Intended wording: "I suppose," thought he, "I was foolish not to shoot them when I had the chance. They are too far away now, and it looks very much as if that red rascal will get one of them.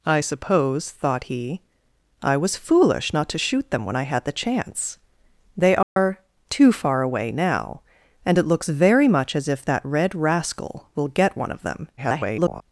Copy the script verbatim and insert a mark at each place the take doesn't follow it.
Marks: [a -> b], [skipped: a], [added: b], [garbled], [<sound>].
"I suppose," thought he, "I was foolish not to shoot them when I had the chance. They are [dropout] too far away now, and it looks very much as if that red rascal will get one of them. [garbled]